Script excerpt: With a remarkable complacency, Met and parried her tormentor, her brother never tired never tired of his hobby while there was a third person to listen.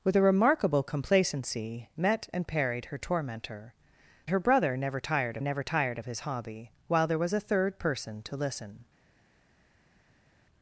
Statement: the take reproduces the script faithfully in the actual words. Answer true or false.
true